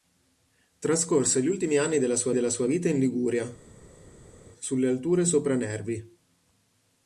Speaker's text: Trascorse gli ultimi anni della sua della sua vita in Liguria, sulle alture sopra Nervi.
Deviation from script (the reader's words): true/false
false